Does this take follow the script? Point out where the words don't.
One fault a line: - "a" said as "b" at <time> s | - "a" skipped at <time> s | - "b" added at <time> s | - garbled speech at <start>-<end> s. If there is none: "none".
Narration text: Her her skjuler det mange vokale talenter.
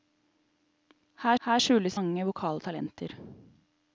none